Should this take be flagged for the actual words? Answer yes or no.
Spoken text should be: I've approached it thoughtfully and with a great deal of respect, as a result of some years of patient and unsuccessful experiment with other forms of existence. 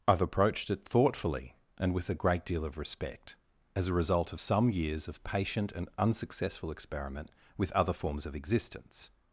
no